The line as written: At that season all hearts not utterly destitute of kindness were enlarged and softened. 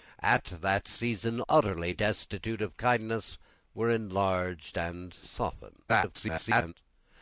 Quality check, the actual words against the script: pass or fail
fail